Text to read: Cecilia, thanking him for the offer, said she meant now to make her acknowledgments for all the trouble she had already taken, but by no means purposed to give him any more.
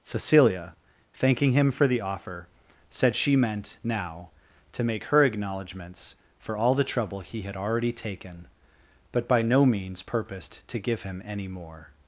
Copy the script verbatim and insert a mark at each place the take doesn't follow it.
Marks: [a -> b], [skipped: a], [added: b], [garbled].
Cecilia, thanking him for the offer, said she meant now to make her acknowledgments for all the trouble [she -> he] had already taken, but by no means purposed to give him any more.